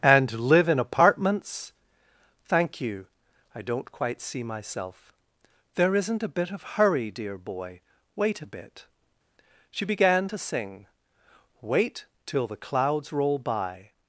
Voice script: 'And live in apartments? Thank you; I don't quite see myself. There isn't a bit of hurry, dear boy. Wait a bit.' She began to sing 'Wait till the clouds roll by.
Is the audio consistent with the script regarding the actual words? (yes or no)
yes